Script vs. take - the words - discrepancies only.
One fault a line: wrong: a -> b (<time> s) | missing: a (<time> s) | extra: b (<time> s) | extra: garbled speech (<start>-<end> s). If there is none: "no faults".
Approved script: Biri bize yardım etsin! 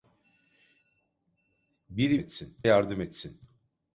wrong: bize -> etsin (2.2 s)